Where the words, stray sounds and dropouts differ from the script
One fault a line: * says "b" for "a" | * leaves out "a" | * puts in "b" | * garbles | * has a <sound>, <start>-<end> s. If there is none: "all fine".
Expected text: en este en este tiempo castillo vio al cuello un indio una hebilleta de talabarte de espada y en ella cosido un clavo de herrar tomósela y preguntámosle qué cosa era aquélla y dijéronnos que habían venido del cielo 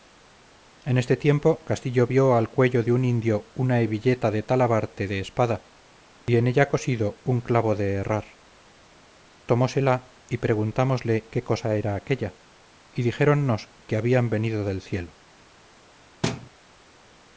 * leaves out "en este"
* puts in "de"
* has a dropout, 6.2-6.3 s
* has a thud, 16.2-16.5 s